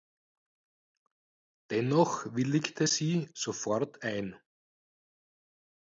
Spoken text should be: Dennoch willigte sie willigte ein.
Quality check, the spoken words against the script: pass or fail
fail